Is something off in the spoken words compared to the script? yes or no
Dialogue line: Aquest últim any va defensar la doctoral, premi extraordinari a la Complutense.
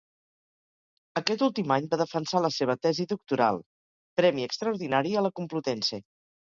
yes